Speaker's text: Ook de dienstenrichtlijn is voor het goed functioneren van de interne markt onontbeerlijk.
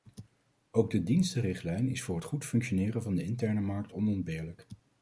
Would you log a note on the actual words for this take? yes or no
no